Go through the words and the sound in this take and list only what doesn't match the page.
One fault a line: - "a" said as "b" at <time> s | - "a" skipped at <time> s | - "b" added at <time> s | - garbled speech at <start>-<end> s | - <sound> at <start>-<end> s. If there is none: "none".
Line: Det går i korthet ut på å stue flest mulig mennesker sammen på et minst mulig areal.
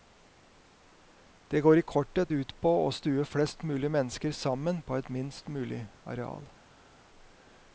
none